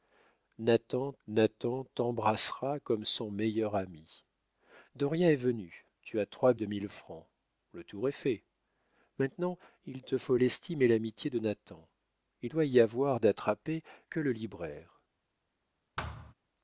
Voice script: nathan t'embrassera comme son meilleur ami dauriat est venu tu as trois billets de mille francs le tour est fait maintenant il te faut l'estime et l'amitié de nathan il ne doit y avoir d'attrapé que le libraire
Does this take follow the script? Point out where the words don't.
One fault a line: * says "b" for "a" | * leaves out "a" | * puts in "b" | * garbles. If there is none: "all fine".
* puts in "nathan"
* leaves out "billets"
* leaves out "ne"